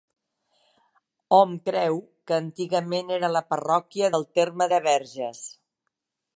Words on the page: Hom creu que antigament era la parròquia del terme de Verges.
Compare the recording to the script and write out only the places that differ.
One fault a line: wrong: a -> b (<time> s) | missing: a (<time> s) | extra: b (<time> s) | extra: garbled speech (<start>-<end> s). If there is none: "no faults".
no faults